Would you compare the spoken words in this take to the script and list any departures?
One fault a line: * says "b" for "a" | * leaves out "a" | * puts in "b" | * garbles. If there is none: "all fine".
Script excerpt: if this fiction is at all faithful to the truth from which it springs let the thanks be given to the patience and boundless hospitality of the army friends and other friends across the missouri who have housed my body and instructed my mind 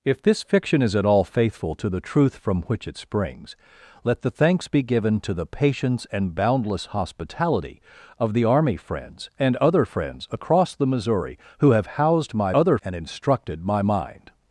* says "other" for "body"